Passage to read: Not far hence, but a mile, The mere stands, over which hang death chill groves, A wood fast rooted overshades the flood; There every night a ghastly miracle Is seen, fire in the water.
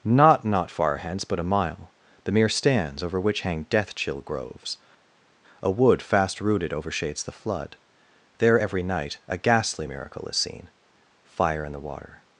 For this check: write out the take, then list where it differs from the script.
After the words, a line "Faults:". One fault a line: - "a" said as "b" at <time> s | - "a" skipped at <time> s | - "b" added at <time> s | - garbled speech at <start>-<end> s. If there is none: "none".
Not not far hence, but a mile, The mere stands, over which hang death chill groves, A wood fast rooted overshades the flood; There every night a ghastly miracle Is seen, fire in the water.
Faults:
- "not" added at 0.4 s